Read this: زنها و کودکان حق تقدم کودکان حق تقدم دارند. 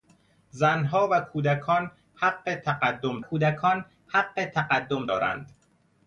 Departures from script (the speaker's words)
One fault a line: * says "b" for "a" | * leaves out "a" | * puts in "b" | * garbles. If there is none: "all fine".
all fine